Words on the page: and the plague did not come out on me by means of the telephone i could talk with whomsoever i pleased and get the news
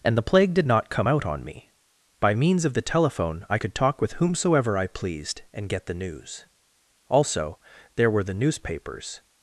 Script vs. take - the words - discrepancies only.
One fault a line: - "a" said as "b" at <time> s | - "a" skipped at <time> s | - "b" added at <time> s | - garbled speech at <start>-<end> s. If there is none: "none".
- "also there were the newspapers" added at 7.1 s